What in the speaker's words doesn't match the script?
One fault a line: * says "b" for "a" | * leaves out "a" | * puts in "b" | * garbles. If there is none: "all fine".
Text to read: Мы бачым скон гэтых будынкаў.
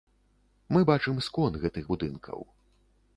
all fine